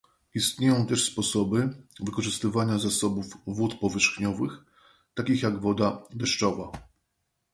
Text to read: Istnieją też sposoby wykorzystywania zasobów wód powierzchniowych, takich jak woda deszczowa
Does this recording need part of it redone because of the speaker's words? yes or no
no